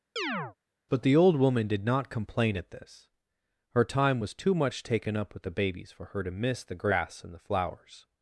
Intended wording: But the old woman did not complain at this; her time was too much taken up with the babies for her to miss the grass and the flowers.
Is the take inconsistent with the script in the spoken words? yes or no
no